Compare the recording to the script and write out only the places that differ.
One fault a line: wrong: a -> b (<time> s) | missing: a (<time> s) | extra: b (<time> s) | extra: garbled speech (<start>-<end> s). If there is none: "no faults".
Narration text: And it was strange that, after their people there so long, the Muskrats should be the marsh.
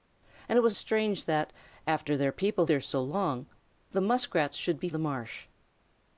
no faults